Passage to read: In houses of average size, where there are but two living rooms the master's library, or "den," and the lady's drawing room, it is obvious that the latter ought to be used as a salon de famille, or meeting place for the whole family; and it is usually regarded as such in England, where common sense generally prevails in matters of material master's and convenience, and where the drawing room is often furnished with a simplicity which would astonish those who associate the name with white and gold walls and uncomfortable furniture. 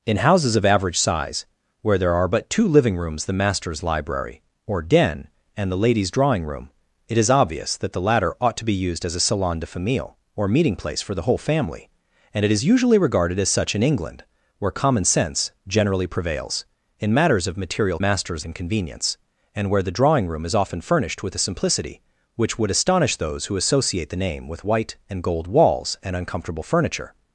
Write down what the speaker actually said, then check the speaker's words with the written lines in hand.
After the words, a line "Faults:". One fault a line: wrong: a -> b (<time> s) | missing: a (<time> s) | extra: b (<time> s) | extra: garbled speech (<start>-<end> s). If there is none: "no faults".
In houses of average size, where there are but two living rooms the master's library, or "den," and the lady's drawing room, it is obvious that the latter ought to be used as a salon de famille, or meeting place for the whole family; and it is usually regarded as such in England, where common sense generally prevails in matters of material master's and convenience, and where the drawing room is often furnished with a simplicity which would astonish those who associate the name with white and gold walls and uncomfortable furniture.
Faults:
no faults